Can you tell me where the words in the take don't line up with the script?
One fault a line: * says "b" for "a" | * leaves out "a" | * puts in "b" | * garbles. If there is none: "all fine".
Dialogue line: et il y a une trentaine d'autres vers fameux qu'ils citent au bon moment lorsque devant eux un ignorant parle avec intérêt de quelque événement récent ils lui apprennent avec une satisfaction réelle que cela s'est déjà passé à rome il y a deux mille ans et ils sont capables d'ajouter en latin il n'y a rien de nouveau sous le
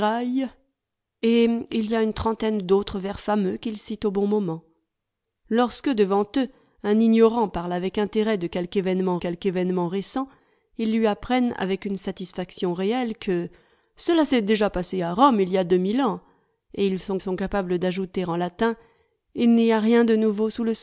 * puts in "quelque événement"
* puts in "sont"